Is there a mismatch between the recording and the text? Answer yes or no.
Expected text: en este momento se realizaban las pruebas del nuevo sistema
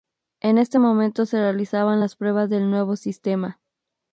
no